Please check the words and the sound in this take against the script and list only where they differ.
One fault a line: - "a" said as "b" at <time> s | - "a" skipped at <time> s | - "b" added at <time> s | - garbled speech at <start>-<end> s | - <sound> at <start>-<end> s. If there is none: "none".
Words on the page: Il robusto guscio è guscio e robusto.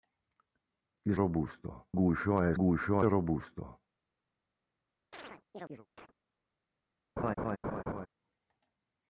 - chirp at 5.1-6.1 s
- laugh at 7.2-8.1 s